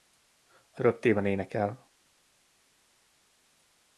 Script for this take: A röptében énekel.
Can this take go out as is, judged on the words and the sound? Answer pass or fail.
pass